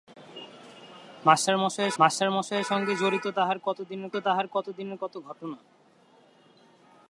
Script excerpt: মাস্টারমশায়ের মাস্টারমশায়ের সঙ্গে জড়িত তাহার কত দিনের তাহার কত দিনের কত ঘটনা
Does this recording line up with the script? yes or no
yes